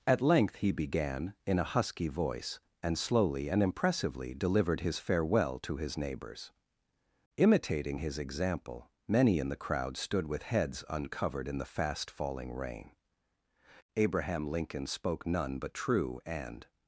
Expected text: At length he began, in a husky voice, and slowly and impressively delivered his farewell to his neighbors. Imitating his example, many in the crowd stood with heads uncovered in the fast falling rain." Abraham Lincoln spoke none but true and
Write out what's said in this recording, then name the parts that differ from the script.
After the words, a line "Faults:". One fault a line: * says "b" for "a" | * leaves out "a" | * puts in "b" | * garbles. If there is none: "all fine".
At length he began, in a husky voice, and slowly and impressively delivered his farewell to his neighbors. Imitating his example, many in the crowd stood with heads uncovered in the fast falling rain." Abraham Lincoln spoke none but true and
Faults:
all fine